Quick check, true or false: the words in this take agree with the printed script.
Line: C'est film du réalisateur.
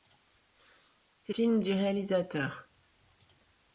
true